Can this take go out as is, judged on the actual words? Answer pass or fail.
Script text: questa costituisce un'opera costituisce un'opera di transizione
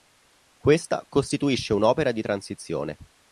fail